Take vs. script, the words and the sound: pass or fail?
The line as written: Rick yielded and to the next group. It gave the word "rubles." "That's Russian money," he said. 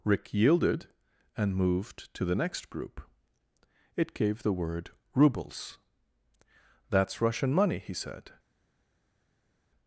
fail